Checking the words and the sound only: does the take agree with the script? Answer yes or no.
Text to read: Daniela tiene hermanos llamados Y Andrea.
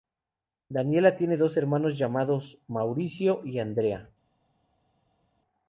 no